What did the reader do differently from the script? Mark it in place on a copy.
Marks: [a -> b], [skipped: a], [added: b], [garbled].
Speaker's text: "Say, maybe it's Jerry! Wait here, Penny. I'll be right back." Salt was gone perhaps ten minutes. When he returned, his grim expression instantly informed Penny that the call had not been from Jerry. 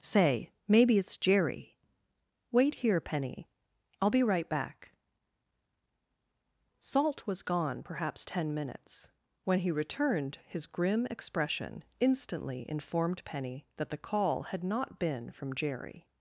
"Say, maybe it's Jerry! Wait here, Penny. I'll be right back." Salt was gone perhaps ten minutes. When he returned, his grim expression instantly informed Penny that the call had not been from Jerry.